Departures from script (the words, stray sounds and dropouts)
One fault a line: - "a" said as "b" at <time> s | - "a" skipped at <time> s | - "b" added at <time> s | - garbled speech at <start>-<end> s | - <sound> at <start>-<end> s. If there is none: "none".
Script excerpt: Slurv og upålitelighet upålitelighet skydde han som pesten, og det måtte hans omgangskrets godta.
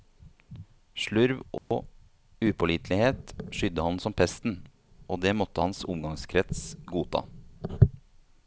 - dropout at 1.6-1.7 s
- "upålitelighet" skipped at 3.4 s